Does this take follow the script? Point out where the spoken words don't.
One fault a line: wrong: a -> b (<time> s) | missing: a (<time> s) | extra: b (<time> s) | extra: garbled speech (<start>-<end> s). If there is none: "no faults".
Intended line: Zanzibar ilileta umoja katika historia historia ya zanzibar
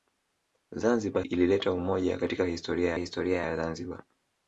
no faults